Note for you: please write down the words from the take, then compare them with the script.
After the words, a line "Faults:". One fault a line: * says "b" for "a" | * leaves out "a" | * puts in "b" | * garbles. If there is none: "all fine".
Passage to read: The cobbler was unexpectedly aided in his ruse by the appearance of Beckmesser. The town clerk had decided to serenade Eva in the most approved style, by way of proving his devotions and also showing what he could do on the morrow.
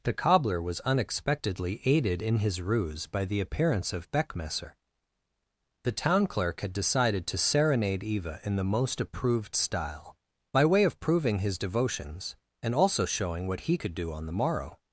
The cobbler was unexpectedly aided in his ruse by the appearance of Beckmesser. The town clerk had decided to serenade Eva in the most approved style, by way of proving his devotions and also showing what he could do on the morrow.
Faults:
all fine